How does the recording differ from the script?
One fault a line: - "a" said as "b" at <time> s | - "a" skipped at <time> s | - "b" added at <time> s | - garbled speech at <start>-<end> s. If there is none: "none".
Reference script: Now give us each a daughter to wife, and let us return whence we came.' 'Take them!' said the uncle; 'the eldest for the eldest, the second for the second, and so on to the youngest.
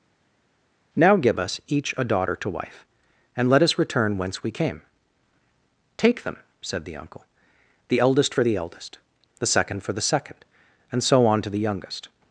none